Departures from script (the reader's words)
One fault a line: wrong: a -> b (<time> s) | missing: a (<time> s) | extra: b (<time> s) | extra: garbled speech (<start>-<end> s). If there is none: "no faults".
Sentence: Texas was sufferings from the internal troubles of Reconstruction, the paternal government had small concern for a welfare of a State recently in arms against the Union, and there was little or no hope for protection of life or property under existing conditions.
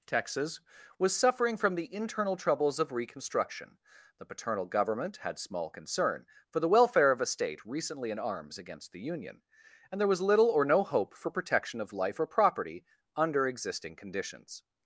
wrong: sufferings -> suffering (1.1 s)
wrong: a -> the (6.6 s)